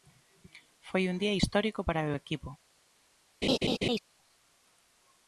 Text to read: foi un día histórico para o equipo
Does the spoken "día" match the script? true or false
true